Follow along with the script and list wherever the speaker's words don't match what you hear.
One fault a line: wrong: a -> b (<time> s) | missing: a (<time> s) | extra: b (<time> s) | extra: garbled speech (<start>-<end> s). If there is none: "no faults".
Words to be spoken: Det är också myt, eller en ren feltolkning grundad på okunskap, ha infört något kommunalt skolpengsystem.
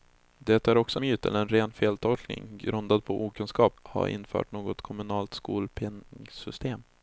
no faults